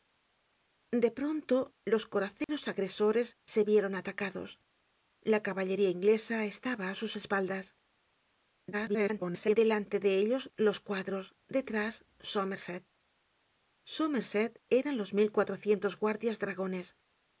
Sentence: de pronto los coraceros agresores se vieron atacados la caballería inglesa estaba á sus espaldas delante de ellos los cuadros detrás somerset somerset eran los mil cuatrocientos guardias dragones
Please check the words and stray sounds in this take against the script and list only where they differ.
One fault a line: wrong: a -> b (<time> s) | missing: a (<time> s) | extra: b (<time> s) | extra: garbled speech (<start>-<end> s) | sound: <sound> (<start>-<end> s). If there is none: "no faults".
sound: dropout (2.4-2.5 s)
extra: garbled speech (8.7-9.6 s)